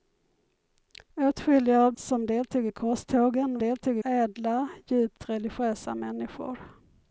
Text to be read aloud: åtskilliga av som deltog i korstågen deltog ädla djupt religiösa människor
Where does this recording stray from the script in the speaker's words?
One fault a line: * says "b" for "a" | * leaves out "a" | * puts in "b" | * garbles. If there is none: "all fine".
all fine